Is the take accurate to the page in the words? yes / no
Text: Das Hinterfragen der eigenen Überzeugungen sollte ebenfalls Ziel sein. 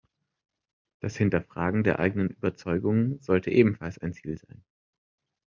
no